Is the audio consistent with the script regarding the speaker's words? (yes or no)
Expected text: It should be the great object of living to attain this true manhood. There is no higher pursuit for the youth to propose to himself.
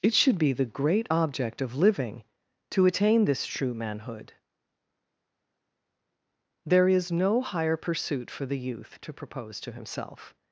yes